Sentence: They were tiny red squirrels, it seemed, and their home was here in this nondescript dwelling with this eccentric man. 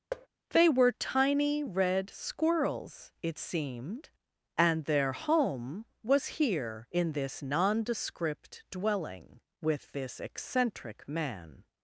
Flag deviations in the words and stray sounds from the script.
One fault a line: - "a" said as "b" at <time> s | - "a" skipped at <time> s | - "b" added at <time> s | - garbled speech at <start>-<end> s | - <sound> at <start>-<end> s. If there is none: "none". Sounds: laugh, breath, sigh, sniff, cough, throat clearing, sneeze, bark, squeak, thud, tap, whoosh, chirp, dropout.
- thud at 0.1-0.3 s